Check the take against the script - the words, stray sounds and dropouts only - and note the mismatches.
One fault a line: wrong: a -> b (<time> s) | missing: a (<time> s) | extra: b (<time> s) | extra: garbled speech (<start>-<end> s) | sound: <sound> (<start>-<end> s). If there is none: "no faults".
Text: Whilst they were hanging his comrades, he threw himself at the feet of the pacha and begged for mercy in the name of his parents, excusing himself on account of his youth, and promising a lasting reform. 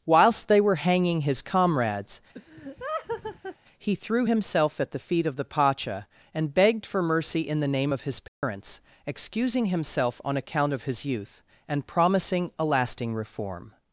sound: laugh (2.3-3.6 s)
sound: dropout (8.3-8.4 s)